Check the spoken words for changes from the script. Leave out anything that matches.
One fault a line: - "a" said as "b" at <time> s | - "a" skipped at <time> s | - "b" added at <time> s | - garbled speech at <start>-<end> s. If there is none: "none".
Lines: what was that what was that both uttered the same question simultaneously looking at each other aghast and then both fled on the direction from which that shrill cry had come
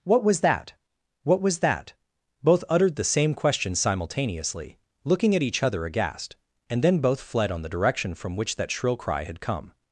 none